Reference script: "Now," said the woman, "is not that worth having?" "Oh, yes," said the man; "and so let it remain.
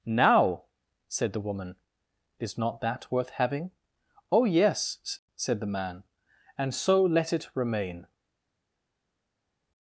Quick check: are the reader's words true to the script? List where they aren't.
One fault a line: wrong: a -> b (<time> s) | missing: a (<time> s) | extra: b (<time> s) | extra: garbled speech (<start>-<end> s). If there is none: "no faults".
no faults